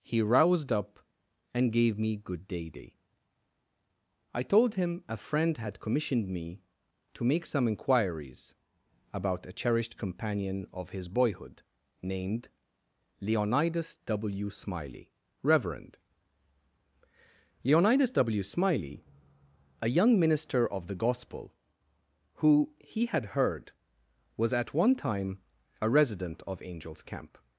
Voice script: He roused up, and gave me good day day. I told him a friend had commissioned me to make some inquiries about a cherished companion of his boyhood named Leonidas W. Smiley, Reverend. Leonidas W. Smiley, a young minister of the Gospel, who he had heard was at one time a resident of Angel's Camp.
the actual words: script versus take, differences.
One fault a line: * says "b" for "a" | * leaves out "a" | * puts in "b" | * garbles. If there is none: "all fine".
all fine